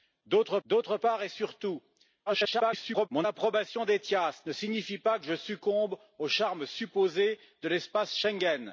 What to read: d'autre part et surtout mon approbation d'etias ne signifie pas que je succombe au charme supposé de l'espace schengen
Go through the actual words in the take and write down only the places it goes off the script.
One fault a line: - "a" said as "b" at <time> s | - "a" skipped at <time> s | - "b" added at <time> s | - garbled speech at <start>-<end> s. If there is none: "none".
- "d'autre" added at 0.6 s
- garbled speech at 2.3-3.1 s